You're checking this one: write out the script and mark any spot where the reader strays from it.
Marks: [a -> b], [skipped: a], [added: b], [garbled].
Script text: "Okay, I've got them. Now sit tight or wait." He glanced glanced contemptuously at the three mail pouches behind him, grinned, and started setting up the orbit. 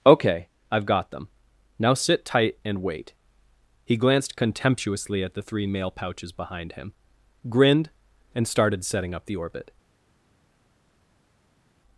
"Okay, I've got them. Now sit tight [or -> and] wait." He glanced [skipped: glanced] contemptuously at the three mail pouches behind him, grinned, and started setting up the orbit.